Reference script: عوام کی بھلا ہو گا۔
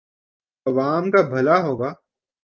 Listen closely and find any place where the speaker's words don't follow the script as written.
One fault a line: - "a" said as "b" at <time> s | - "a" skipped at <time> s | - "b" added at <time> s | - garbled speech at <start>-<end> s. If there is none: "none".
- "کی" said as "کا" at 1.1 s